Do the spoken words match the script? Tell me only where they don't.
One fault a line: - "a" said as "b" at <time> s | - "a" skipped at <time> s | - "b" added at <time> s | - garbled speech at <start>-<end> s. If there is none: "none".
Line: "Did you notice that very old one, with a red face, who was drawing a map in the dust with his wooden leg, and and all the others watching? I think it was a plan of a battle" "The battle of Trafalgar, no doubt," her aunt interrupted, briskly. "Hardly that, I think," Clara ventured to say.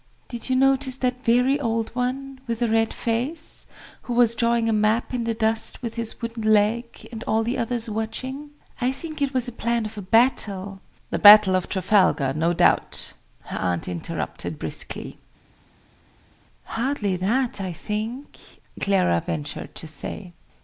- "and" skipped at 7.2 s